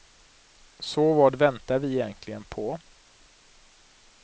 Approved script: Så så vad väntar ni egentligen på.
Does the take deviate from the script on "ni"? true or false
true